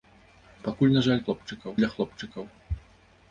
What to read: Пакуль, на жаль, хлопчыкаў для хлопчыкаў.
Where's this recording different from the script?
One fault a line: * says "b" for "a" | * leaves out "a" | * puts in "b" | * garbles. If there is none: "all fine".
all fine